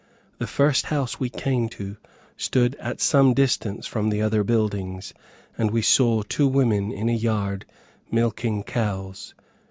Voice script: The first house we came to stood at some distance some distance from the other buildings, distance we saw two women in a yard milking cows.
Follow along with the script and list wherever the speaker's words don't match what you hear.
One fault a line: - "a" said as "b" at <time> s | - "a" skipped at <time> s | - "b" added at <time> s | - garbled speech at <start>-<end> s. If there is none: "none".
- "some distance" skipped at 3.9 s
- "distance" said as "and" at 5.6 s